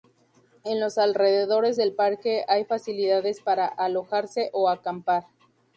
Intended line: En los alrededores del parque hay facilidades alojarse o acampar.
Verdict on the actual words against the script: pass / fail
fail